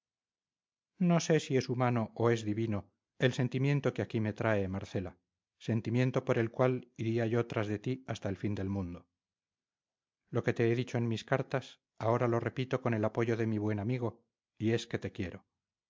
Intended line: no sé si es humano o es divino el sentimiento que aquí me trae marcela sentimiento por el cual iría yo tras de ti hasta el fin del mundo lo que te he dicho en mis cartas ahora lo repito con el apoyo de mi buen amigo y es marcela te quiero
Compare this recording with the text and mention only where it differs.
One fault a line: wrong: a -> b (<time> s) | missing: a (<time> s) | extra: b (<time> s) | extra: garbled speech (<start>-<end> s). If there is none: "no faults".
wrong: marcela -> que (14.9 s)